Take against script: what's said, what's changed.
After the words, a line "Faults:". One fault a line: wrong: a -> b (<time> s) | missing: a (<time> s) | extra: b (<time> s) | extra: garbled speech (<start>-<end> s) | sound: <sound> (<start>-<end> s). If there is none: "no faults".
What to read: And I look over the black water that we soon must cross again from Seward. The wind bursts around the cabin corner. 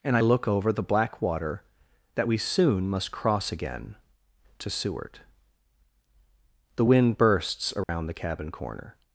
And I look over the black water that we soon must cross again to Seward. The wind bursts around the cabin corner.
Faults:
wrong: from -> to (4.6 s)
sound: dropout (7.8-7.9 s)